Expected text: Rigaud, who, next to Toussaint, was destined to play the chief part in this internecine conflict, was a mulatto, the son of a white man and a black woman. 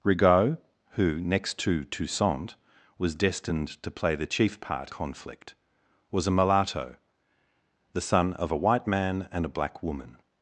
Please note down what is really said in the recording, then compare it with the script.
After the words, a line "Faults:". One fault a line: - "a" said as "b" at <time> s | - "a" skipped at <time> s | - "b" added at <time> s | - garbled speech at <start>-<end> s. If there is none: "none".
Rigaud, who, next to Toussaint, was destined to play the chief part conflict, was a mulatto, the son of a white man and a black woman.
Faults:
- "in this internecine" skipped at 4.9 s